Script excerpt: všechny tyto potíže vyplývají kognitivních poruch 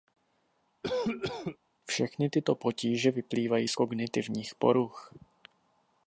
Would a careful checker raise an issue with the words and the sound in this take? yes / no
yes